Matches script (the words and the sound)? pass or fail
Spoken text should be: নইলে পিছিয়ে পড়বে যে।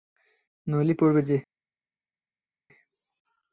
fail